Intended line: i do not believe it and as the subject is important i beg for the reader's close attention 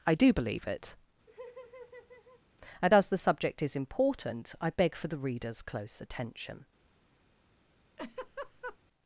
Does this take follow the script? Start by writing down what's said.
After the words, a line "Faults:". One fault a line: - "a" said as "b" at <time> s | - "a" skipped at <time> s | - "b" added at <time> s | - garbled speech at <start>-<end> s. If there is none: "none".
i do believe it and as the subject is important i beg for the reader's close attention
Faults:
- "not" skipped at 0.3 s